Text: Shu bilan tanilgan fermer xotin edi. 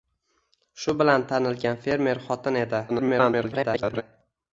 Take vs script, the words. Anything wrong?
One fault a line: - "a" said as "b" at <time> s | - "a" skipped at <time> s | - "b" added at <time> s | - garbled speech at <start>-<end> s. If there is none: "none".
- garbled speech at 2.9-4.0 s